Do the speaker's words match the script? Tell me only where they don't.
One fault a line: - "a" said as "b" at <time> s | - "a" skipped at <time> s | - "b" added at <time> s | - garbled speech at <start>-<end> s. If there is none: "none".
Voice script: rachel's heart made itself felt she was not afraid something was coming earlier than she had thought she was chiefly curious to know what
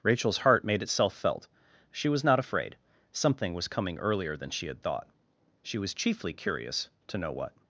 none